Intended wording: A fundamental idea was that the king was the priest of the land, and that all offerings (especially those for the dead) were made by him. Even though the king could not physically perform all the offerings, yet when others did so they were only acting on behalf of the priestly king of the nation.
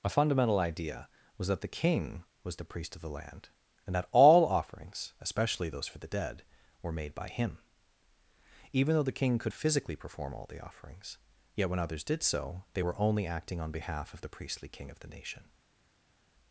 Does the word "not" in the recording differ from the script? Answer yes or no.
yes